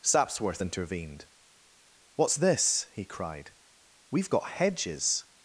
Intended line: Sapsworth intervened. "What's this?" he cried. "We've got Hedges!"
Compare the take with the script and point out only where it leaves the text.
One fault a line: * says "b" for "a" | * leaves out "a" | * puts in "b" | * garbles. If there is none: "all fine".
all fine